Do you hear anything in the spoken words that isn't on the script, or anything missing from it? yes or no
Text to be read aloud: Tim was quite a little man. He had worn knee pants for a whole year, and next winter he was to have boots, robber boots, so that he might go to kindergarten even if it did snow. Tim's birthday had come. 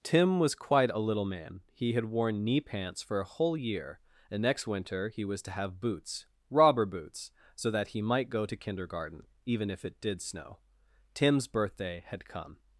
no